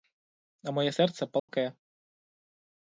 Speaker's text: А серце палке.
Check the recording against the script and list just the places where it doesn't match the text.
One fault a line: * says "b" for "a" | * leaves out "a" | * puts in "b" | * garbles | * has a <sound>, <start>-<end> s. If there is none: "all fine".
* puts in "моє"
* has a dropout, 1.4-1.5 s